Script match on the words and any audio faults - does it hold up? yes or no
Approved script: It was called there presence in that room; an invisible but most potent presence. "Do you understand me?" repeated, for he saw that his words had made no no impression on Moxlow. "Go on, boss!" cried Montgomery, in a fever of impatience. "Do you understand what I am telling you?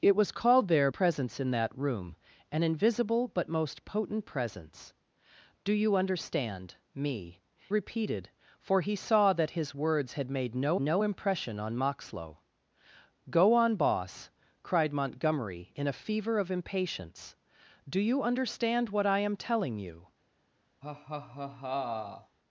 no